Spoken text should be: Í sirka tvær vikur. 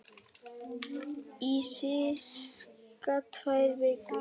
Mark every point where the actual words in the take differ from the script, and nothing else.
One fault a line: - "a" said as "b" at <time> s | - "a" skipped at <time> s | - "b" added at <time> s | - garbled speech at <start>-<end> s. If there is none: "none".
none